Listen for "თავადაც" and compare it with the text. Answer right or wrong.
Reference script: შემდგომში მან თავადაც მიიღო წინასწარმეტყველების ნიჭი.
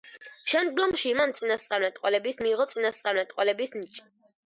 wrong